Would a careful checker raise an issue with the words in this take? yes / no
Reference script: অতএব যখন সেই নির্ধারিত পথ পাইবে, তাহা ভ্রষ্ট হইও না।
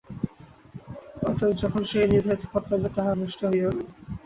no